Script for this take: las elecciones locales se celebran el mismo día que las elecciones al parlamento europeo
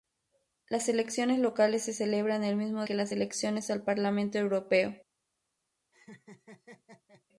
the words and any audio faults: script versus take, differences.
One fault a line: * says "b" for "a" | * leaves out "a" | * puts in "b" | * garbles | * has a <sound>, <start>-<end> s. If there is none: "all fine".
* leaves out "día"
* has a laugh, 5.9-7.2 s